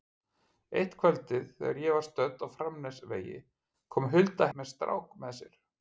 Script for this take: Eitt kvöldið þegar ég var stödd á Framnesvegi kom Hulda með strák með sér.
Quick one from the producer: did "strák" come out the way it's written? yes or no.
yes